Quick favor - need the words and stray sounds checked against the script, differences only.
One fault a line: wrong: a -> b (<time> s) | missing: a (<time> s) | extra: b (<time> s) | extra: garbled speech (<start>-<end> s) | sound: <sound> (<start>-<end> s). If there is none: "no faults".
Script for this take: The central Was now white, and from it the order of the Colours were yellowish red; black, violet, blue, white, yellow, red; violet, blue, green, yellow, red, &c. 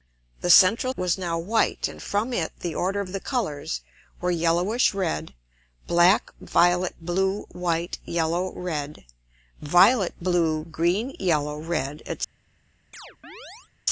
sound: chirp (12.9-13.7 s)